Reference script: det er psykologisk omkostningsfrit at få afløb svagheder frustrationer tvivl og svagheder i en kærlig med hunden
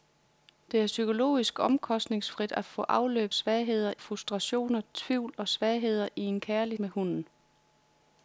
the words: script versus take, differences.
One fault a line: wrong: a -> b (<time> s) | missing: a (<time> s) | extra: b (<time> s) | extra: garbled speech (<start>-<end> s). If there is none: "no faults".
no faults